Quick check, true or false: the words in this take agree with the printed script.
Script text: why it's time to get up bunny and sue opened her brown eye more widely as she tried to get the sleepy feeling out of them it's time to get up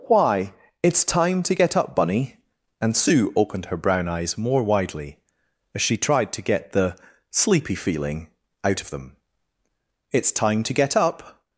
false